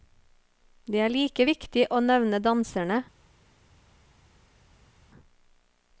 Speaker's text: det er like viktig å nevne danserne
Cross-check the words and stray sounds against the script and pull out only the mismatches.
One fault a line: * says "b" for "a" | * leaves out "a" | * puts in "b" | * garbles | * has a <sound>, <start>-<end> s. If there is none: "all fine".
all fine